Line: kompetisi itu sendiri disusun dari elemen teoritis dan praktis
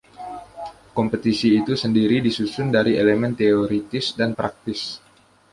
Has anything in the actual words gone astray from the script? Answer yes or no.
no